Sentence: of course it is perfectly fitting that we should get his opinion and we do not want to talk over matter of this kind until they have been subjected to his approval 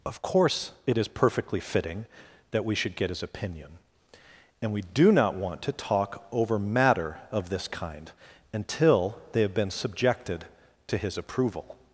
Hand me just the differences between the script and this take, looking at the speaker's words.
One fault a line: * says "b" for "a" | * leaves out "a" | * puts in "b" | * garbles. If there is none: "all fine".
all fine